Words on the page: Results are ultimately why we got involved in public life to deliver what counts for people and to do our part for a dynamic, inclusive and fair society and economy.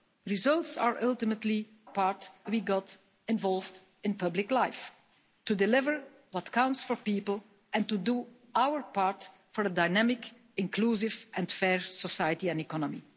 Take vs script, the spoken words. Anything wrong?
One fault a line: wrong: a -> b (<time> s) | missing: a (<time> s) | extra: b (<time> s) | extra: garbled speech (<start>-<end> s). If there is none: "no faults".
wrong: why -> part (1.8 s)